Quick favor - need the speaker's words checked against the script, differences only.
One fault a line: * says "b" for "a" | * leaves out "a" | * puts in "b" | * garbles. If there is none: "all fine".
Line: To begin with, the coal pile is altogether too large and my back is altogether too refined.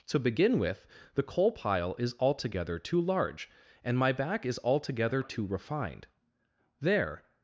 * puts in "There"